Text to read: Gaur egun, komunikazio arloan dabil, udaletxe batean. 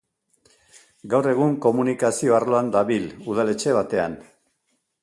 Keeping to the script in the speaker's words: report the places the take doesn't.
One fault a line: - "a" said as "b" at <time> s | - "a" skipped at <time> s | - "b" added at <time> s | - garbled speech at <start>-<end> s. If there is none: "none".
none